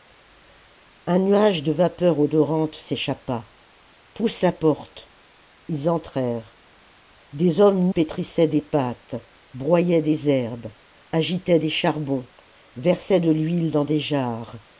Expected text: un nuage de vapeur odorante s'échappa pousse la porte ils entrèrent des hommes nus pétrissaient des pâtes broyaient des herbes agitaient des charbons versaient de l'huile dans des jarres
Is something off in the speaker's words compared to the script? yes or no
yes